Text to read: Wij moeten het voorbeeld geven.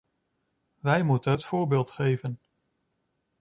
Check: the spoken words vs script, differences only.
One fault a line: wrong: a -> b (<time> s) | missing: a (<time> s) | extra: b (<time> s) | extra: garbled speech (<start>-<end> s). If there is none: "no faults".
no faults